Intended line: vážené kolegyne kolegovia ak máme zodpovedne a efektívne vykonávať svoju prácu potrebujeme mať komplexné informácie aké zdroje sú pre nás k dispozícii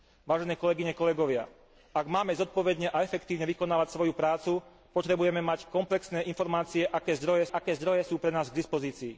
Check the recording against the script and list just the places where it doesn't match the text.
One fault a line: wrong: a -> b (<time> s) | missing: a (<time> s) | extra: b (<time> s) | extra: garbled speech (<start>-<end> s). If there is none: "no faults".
extra: aké zdroje (7.5 s)